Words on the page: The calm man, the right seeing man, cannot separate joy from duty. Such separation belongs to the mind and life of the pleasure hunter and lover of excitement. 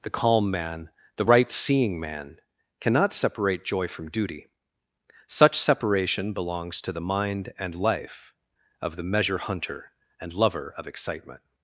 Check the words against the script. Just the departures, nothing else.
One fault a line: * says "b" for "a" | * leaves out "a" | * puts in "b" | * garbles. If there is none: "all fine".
* says "measure" for "pleasure"